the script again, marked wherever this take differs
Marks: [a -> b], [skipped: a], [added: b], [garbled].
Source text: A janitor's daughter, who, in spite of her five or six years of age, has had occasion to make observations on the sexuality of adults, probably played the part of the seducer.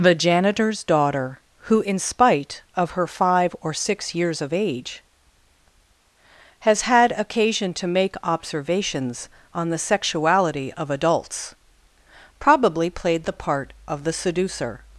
[A -> The] janitor's daughter, who, in spite of her five or six years of age, has had occasion to make observations on the sexuality of adults, probably played the part of the seducer.